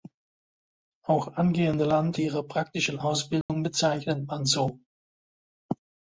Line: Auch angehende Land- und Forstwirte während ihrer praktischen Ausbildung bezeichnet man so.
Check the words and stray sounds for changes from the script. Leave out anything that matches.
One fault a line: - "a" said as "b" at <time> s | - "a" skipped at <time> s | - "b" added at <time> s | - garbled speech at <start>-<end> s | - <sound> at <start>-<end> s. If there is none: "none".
- "und Forstwirte während" skipped at 2.2 s
- dropout at 3.4-3.5 s